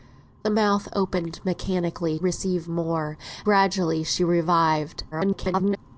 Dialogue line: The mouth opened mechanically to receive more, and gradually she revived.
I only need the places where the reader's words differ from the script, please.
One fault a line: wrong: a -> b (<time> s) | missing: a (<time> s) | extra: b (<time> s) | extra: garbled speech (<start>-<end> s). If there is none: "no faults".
missing: to (2.2 s)
missing: and (3.2 s)
extra: garbled speech (5.1-5.8 s)